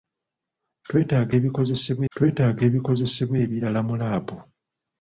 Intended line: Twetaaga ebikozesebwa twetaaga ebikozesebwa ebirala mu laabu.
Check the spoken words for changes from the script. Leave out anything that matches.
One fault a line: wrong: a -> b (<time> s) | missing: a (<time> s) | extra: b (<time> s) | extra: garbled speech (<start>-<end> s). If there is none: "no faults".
no faults